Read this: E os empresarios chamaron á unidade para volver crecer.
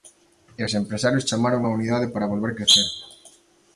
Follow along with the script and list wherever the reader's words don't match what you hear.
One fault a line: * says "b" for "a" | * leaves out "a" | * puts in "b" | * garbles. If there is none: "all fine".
all fine